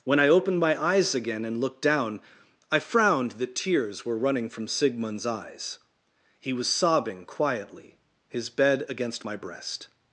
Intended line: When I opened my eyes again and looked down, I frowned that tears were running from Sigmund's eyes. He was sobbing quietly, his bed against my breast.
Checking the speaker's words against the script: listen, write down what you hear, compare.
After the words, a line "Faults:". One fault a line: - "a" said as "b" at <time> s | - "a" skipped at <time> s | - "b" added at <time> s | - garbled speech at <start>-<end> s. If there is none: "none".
When I opened my eyes again and looked down, I frowned that tears were running from Sigmund's eyes. He was sobbing quietly, his bed against my breast.
Faults:
none